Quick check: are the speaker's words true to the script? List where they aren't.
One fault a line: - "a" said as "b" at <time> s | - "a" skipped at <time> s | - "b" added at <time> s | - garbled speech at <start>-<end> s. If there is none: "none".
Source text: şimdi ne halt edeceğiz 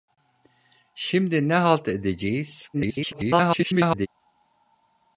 - garbled speech at 2.7-4.1 s